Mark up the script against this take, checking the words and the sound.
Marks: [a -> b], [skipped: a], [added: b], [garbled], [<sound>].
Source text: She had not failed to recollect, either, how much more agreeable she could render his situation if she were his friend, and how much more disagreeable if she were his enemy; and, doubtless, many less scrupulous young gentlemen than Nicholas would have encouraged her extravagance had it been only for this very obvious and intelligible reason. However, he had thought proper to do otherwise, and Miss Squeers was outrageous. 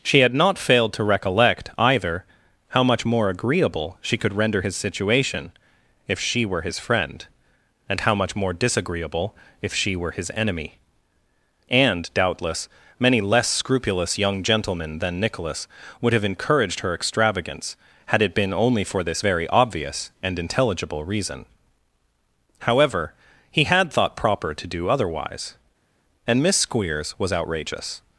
She had not failed to recollect, either, how much more agreeable she could render his situation if she were his friend, and how much more disagreeable if she were his enemy; and, doubtless, many less scrupulous young gentlemen than Nicholas would have encouraged her extravagance had it been only for this very obvious and intelligible reason. However, he had thought proper to do otherwise, and Miss Squeers was outrageous.